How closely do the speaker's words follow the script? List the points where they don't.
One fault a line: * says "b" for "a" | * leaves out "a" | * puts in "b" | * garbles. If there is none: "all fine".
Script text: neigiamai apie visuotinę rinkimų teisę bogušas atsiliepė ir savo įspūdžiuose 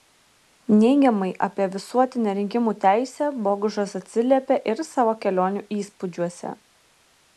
* puts in "kelionių"